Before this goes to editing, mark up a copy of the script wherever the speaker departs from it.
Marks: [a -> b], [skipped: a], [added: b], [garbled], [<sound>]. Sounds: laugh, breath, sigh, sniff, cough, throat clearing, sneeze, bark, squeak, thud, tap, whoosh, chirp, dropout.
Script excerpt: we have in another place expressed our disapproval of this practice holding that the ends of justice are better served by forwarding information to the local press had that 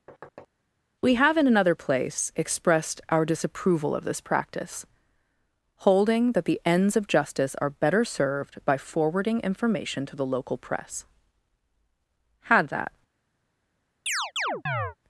[thud] we have in another place expressed our disapproval of this practice holding that the ends of justice are better served by forwarding information to the local press had that [chirp]